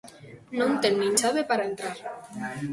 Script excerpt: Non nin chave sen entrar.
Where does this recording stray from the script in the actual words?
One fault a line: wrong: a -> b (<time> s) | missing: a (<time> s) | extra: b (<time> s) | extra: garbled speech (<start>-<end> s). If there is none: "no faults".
extra: ten (0.8 s)
wrong: sen -> para (1.5 s)